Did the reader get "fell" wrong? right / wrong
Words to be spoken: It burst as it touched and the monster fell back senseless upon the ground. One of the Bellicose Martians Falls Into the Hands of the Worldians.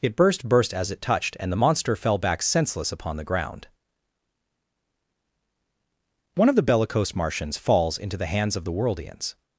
right